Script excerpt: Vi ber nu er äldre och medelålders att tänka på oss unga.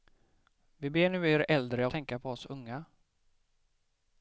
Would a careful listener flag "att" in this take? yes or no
yes